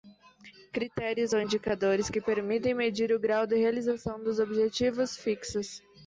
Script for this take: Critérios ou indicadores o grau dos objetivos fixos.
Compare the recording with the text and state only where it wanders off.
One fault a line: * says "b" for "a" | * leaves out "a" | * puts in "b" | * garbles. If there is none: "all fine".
* puts in "que permitem medir"
* puts in "de realização"